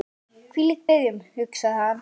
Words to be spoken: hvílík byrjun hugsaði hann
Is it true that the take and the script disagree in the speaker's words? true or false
false